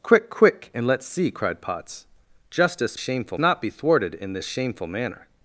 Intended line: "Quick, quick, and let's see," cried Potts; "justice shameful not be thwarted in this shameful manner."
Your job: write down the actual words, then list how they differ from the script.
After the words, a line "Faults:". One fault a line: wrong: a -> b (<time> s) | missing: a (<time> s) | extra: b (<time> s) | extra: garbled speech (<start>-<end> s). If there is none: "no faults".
"Quick, quick, and let's see," cried Potts; "justice shameful not be thwarted in this shameful manner."
Faults:
no faults